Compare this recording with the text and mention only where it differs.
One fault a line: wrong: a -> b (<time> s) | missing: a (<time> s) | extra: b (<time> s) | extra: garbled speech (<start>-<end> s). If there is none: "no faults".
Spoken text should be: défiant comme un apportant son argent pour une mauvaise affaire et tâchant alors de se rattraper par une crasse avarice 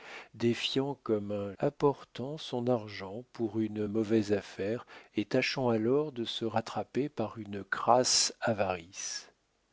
no faults